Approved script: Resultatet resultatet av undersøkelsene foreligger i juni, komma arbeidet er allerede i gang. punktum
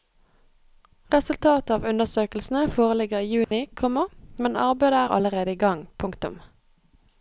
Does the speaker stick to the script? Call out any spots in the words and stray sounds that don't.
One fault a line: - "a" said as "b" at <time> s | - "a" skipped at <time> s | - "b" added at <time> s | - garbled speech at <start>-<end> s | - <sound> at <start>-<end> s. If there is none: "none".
- "resultatet" skipped at 1.7 s
- dropout at 3.4-3.5 s
- "men" added at 4.5 s